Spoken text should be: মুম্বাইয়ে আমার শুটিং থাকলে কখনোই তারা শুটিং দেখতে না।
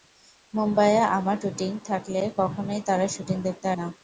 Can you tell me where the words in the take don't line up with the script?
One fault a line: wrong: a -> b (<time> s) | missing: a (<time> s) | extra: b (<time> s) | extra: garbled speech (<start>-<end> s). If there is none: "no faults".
no faults